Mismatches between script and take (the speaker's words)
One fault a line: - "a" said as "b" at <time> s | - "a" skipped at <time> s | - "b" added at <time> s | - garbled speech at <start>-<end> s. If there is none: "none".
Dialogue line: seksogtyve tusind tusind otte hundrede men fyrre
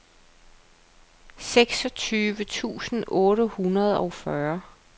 - "tusind" skipped at 3.0 s
- "men" said as "og" at 4.0 s